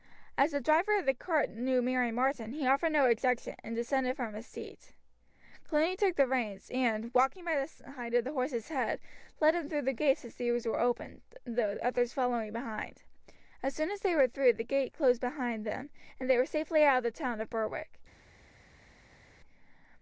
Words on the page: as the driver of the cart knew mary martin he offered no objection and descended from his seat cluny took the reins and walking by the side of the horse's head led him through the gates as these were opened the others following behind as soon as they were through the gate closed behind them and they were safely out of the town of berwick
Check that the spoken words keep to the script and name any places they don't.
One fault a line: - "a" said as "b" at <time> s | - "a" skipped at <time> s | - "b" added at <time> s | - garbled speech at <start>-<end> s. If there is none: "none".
none